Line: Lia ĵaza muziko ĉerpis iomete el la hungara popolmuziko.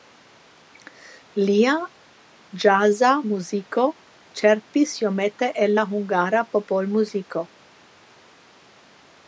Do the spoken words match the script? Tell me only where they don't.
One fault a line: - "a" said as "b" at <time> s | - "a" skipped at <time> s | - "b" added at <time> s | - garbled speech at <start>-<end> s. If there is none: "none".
none